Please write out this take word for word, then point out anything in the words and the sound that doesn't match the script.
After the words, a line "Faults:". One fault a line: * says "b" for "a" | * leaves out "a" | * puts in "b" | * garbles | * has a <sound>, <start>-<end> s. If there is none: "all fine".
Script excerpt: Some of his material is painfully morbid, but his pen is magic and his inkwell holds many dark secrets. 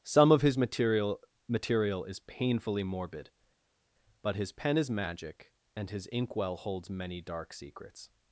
Some of his material material is painfully morbid, but his pen is magic and his inkwell holds many dark secrets.
Faults:
* puts in "material"